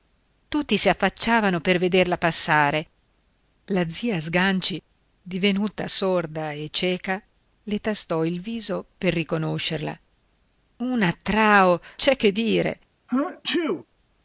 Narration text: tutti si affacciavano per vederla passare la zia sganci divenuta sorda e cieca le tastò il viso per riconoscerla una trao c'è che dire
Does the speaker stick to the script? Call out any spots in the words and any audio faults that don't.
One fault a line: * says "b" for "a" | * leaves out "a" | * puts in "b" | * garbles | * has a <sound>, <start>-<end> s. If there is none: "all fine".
* has a sneeze, 13.1-13.9 s